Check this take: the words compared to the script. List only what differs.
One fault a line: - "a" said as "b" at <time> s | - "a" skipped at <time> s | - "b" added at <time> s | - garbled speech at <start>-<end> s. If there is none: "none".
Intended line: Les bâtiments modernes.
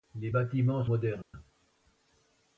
none